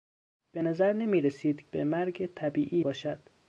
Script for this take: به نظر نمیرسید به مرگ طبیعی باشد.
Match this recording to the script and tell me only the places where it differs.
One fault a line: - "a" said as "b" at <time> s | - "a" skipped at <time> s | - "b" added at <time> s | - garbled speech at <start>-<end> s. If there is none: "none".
none